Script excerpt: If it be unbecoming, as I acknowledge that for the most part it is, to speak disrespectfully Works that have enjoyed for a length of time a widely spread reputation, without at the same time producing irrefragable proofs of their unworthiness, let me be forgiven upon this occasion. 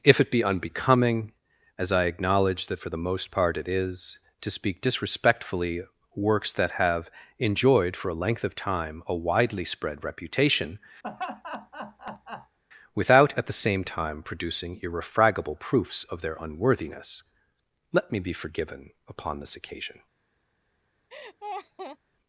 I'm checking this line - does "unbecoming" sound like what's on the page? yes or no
yes